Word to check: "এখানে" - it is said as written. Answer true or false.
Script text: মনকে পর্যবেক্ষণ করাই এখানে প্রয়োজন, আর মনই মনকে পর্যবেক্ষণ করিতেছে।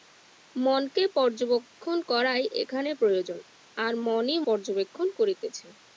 true